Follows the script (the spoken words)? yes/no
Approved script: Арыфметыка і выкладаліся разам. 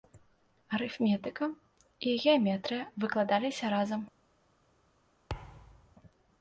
no